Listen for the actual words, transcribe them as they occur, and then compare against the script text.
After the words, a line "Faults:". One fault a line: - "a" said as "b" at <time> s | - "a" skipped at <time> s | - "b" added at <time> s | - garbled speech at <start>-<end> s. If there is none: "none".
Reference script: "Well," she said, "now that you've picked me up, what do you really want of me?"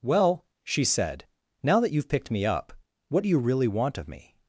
"Well," she said, "now that you've picked me up, what do you really want of me?"
Faults:
none